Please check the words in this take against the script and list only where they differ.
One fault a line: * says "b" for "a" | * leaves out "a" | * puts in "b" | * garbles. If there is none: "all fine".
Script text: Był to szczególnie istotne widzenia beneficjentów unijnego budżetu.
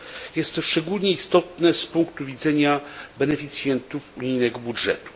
* says "Jest" for "Był"
* puts in "z punktu"